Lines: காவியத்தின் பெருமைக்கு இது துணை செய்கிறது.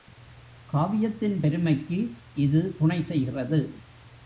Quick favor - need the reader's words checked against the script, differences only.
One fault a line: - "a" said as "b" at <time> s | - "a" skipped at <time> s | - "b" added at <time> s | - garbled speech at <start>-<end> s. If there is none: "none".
none